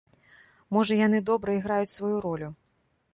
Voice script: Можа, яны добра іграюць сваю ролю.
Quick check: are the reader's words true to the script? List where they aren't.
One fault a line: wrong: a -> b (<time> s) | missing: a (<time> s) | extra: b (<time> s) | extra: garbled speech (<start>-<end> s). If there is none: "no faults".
no faults